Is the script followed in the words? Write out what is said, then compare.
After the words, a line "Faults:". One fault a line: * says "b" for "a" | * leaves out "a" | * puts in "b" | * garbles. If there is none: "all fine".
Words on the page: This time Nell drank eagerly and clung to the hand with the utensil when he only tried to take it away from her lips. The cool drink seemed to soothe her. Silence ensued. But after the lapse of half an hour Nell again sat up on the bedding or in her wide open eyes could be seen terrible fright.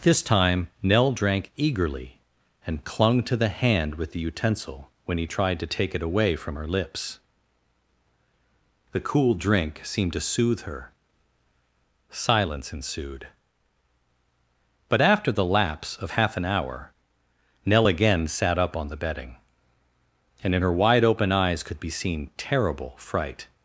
This time Nell drank eagerly and clung to the hand with the utensil when he tried to take it away from her lips. The cool drink seemed to soothe her. Silence ensued. But after the lapse of half an hour Nell again sat up on the bedding and in her wide open eyes could be seen terrible fright.
Faults:
* leaves out "only"
* says "and" for "or"